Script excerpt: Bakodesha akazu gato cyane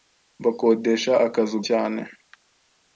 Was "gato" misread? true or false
true